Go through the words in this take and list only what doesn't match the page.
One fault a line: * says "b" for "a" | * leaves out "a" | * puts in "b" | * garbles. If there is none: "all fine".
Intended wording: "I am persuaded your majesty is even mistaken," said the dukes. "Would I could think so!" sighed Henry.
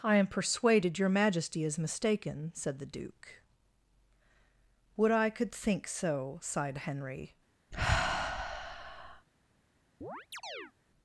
* leaves out "even"
* says "duke" for "dukes"